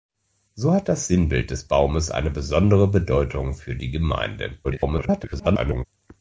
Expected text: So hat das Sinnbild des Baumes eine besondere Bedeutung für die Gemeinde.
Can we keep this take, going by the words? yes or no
no